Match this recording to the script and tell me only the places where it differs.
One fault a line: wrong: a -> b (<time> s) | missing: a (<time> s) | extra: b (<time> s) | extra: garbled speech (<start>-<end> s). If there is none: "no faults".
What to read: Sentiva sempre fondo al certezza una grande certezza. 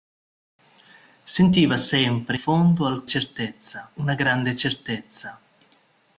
no faults